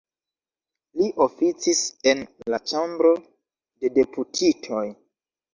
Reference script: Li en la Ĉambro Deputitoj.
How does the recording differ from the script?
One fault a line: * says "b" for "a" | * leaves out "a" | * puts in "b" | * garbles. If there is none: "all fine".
* puts in "oficis"
* puts in "de"